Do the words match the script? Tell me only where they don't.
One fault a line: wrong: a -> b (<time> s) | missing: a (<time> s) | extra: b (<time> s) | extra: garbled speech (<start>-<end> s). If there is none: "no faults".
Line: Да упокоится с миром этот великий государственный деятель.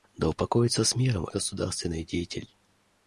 missing: этот великий (1.3 s)